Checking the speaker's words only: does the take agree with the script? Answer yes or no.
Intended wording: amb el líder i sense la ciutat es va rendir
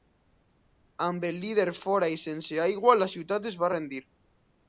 no